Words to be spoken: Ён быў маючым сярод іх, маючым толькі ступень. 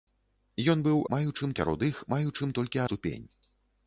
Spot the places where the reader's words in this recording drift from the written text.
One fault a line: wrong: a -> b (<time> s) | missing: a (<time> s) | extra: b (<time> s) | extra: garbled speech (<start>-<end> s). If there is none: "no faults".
no faults